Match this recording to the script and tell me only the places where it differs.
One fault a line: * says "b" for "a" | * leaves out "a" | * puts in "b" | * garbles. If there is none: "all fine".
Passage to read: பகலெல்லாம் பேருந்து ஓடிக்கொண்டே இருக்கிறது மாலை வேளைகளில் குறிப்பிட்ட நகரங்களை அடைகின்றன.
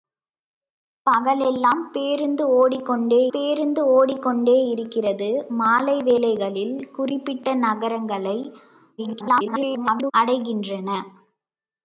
* puts in "பேருந்து ஓடிக்கொண்டே"
* garbles